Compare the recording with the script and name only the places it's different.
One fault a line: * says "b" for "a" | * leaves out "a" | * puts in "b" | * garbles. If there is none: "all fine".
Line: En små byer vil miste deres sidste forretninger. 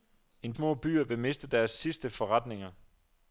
all fine